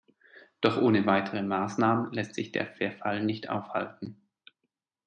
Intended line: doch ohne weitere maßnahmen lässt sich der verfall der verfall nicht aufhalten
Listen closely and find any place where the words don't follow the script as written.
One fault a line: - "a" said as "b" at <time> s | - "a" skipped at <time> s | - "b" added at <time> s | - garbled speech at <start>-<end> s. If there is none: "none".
- "der verfall" skipped at 3.2 s